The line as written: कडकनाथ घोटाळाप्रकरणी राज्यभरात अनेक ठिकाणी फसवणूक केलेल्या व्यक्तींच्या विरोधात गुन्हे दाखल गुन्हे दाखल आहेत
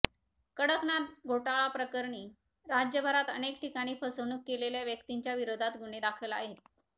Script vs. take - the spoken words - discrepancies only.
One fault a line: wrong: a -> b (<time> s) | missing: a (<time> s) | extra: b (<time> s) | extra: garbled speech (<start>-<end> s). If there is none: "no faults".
missing: गुन्हे दाखल (6.3 s)